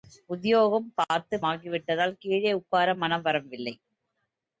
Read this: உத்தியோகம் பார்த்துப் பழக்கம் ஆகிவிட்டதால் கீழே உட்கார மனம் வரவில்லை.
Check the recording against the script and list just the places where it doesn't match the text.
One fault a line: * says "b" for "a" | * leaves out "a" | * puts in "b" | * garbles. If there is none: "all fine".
* leaves out "பழக்கம்"